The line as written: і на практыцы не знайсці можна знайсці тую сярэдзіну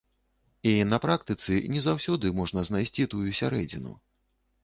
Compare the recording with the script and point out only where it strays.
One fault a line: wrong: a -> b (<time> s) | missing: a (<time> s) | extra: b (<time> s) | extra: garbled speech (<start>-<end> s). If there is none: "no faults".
wrong: знайсці -> заўсёды (1.9 s)